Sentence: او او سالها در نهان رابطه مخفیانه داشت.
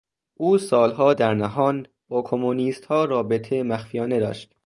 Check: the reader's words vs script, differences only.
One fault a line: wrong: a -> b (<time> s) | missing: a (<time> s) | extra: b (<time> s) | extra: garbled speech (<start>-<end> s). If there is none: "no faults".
missing: او (0.6 s)
extra: با کمونیستها (2.1 s)